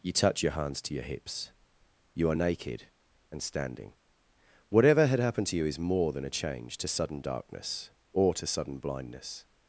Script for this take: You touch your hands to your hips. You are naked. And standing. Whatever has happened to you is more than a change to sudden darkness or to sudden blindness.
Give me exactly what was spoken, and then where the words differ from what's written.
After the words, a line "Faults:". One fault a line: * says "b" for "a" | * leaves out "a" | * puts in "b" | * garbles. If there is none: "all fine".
You touch your hands to your hips. You are naked. And standing. Whatever had happened to you is more than a change to sudden darkness or to sudden blindness.
Faults:
* says "had" for "has"